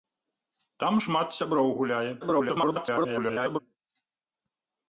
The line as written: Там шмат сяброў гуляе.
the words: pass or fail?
fail